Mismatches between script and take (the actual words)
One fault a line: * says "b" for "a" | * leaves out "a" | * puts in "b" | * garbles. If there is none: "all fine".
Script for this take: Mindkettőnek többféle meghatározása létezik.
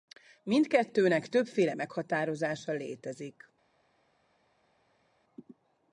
all fine